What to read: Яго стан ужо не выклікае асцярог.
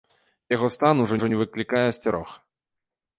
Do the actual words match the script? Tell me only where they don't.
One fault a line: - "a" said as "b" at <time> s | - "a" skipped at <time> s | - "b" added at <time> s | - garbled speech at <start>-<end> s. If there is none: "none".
- "ужо" added at 1.2 s